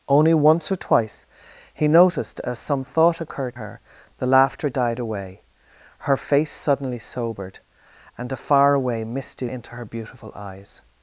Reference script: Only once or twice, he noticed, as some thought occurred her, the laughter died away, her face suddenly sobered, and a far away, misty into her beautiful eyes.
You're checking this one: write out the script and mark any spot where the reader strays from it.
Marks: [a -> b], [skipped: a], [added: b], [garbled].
Only once or twice, he noticed, as some thought occurred her, the laughter died away, her face suddenly sobered, and a far away, misty into her beautiful eyes.